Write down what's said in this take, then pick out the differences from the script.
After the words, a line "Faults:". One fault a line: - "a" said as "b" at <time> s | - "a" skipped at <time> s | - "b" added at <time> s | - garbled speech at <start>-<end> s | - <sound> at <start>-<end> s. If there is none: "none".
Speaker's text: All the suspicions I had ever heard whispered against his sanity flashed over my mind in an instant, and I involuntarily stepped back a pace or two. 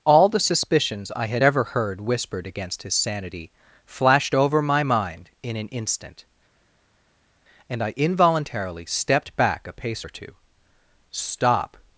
All the suspicions I had ever heard whispered against his sanity flashed over my mind in an instant, and I involuntarily stepped back a pace or two. "Stop
Faults:
- "Stop" added at 11.1 s